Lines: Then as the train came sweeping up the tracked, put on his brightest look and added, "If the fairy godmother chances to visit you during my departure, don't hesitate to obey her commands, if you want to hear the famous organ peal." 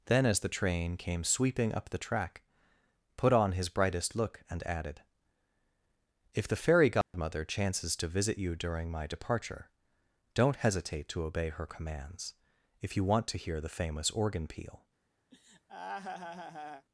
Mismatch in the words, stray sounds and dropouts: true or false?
true